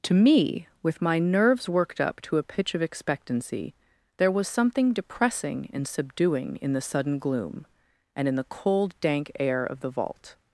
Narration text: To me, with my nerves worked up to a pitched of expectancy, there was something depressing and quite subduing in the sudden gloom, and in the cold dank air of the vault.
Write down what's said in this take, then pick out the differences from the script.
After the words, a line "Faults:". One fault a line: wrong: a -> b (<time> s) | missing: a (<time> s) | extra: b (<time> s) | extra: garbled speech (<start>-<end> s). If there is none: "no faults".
To me, with my nerves worked up to a pitch of expectancy, there was something depressing and subduing in the sudden gloom, and in the cold dank air of the vault.
Faults:
wrong: pitched -> pitch (2.4 s)
missing: quite (5.9 s)